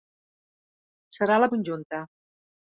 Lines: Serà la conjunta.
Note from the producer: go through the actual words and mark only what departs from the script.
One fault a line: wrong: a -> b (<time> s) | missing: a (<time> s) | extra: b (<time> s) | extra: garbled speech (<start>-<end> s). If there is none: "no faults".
no faults